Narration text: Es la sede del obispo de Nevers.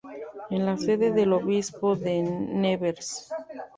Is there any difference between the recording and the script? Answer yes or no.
no